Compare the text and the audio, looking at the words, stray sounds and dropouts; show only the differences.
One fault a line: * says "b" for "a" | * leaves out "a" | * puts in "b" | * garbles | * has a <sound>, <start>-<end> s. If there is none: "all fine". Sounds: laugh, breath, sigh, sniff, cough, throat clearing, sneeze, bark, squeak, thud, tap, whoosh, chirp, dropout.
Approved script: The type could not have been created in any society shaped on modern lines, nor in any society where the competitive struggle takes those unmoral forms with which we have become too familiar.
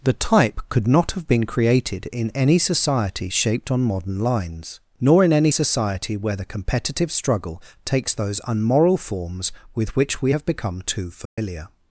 * has a dropout, 11.3-11.4 s